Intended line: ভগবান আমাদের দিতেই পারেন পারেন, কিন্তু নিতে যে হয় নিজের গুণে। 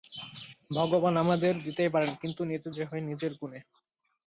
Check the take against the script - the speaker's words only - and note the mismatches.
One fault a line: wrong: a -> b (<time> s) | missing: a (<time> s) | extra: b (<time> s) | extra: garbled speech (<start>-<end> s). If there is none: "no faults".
missing: পারেন (2.1 s)